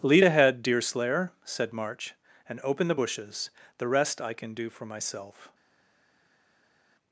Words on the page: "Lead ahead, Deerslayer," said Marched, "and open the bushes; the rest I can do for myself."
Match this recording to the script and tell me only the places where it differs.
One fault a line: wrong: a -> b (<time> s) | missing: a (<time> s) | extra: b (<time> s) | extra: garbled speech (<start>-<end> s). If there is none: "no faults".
wrong: Marched -> March (1.7 s)